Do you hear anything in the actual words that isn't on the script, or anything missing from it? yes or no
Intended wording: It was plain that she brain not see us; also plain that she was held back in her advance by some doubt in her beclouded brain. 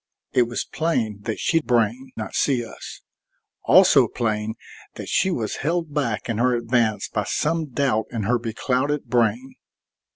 no